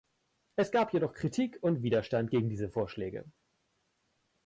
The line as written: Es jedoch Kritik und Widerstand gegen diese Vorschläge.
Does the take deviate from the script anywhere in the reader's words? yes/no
yes